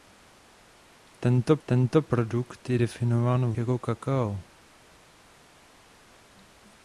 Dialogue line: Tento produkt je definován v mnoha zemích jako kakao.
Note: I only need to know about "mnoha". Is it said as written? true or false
false